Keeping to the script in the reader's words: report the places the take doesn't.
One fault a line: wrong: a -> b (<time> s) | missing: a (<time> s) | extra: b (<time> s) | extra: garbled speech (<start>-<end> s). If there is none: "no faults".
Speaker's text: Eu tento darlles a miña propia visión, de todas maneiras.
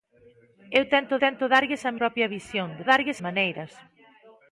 extra: tento (1.2 s)
missing: miña (1.9 s)
wrong: todas -> darlles (2.9 s)